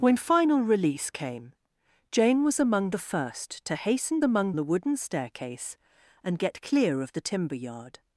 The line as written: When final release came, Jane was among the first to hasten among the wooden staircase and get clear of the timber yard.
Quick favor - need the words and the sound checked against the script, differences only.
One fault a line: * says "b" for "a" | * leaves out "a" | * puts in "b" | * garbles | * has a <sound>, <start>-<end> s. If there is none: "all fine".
all fine